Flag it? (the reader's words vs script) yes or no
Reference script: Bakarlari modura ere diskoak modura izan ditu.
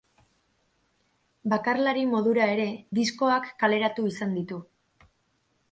yes